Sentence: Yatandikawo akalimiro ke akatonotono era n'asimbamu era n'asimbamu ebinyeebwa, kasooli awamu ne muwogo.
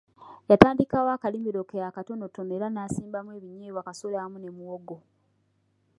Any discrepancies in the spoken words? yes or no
yes